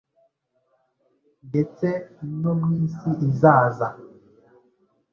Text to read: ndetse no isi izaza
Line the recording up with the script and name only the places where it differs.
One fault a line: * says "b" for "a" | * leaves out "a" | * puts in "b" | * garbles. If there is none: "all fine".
* puts in "mu"